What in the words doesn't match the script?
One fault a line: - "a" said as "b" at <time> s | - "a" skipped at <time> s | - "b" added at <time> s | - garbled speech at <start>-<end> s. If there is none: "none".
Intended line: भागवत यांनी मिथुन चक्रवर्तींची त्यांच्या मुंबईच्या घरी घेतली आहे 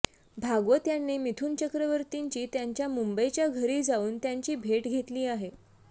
- "जाऊन त्यांची भेट" added at 3.8 s